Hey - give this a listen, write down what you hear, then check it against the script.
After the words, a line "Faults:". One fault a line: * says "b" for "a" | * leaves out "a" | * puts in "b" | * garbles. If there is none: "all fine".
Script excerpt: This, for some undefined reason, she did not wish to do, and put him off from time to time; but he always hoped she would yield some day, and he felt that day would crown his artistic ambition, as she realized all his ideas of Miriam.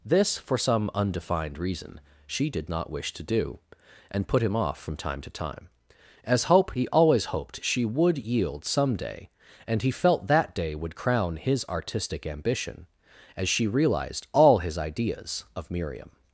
This, for some undefined reason, she did not wish to do, and put him off from time to time; as hope he always hoped she would yield some day, and he felt that day would crown his artistic ambition, as she realized all his ideas of Miriam.
Faults:
* says "as hope" for "but"